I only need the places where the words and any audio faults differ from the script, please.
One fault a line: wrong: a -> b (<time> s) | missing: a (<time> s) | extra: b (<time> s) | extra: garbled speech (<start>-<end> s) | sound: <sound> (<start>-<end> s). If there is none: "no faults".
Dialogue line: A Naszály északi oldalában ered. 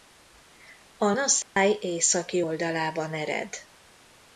sound: dropout (1.4-1.6 s)